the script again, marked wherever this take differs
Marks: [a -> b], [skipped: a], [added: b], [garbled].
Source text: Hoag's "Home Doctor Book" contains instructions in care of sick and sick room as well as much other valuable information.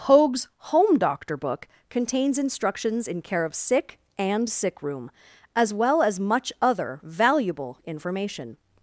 Hoag's "Home Doctor Book" contains instructions in care of sick and sick room as well as much other valuable information.